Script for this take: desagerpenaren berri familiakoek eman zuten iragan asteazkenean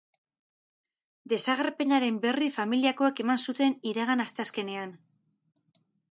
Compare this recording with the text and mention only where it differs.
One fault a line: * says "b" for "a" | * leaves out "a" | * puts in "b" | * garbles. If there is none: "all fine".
all fine